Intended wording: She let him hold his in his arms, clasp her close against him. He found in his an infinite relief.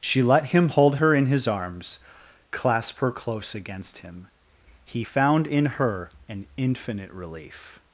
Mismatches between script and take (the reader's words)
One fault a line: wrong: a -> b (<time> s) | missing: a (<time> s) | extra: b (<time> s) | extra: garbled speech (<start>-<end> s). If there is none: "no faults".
wrong: his -> her (1.0 s)
wrong: his -> her (5.6 s)